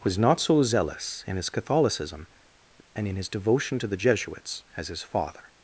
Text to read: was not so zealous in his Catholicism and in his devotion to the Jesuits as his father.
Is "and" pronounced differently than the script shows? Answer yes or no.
no